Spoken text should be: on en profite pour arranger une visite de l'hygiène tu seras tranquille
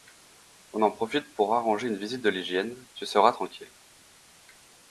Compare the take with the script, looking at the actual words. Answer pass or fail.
pass